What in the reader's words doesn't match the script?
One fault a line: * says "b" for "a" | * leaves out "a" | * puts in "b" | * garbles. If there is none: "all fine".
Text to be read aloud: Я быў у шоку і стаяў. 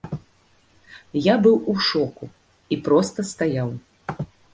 * puts in "проста"